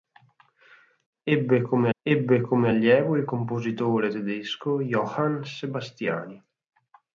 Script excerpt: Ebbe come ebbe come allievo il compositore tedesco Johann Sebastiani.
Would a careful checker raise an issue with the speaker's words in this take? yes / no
no